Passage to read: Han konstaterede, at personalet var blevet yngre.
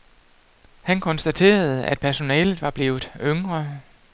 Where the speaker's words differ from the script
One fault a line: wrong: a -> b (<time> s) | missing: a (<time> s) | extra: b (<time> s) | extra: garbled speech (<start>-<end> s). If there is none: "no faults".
no faults